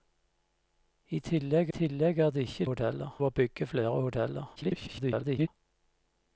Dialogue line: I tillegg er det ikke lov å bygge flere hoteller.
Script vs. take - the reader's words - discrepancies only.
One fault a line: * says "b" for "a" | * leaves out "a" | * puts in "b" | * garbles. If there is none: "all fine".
* puts in "tillegg"
* says "hoteller" for "lov"
* garbles